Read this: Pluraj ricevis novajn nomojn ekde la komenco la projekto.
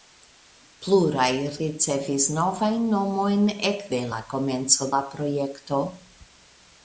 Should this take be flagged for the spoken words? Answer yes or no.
no